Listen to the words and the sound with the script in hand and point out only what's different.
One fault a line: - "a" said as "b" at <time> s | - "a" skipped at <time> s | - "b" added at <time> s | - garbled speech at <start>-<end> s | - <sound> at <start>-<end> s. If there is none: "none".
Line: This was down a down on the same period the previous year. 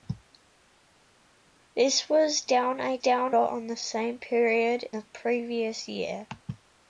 none